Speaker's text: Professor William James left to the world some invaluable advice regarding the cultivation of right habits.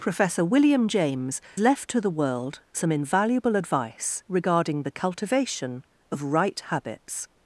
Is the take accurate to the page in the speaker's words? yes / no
yes